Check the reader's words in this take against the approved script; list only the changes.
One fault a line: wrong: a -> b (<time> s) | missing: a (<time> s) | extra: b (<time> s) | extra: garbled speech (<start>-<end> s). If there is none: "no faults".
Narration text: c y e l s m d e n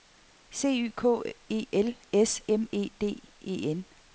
extra: k (0.9 s)
extra: e (2.7 s)